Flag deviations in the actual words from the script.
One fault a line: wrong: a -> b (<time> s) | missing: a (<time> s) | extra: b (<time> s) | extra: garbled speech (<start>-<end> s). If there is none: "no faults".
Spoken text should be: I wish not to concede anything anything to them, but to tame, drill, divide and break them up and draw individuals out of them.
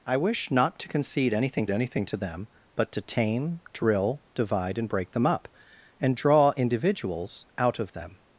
no faults